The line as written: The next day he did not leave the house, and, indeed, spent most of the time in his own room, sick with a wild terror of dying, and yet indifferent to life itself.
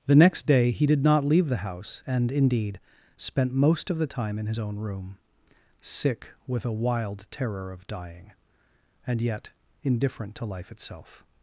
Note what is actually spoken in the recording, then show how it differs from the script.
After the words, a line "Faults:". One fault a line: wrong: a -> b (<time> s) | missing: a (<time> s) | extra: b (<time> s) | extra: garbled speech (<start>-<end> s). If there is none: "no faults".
The next day he did not leave the house, and, indeed, spent most of the time in his own room, sick with a wild terror of dying, and yet indifferent to life itself.
Faults:
no faults